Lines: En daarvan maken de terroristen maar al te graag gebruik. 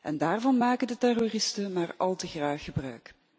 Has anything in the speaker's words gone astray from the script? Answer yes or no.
no